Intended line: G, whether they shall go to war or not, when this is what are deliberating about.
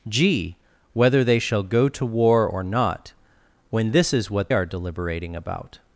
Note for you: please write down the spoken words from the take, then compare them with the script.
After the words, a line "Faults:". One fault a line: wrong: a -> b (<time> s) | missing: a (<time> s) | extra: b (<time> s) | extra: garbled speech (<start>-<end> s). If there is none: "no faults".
G, whether they shall go to war or not, when this is what are deliberating about.
Faults:
no faults